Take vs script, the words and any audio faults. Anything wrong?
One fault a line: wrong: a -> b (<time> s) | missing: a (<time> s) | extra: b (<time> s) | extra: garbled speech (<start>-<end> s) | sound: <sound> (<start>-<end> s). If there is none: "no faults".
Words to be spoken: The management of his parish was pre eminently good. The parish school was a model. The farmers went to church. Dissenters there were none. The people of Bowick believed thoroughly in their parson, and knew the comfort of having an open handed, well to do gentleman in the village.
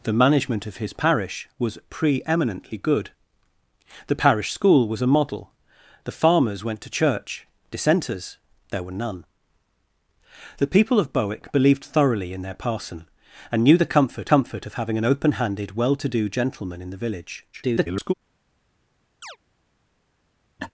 extra: comfort (14.3 s)
extra: garbled speech (17.5-18.1 s)
sound: chirp (19.2-19.4 s)
sound: laugh (20.6-20.7 s)